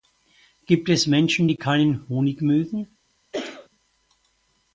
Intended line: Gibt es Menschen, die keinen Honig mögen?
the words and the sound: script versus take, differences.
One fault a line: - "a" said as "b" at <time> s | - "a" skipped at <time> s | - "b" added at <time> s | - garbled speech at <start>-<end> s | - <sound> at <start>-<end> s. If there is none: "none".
- cough at 3.3-3.7 s